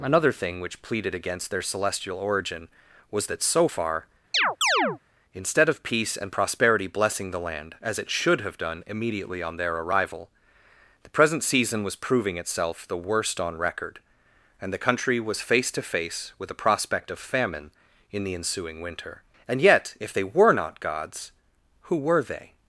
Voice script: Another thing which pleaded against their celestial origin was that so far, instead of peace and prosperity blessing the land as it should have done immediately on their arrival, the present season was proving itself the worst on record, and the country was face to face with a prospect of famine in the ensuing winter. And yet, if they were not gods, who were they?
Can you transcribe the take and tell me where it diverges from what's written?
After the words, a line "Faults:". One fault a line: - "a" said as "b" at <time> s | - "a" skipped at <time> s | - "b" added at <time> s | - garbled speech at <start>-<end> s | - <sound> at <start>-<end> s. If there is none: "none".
Another thing which pleaded against their celestial origin was that so far, instead of peace and prosperity blessing the land as it should have done immediately on their arrival, the present season was proving itself the worst on record, and the country was face to face with a prospect of famine in the ensuing winter. And yet, if they were not gods, who were they?
Faults:
- chirp at 4.3-5.0 s